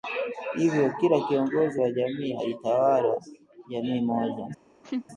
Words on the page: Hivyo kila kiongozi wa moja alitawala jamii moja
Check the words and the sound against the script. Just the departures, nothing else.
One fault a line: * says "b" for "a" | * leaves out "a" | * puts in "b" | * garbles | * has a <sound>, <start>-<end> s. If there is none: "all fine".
* says "jamii" for "moja"
* has a laugh, 4.8-5.1 s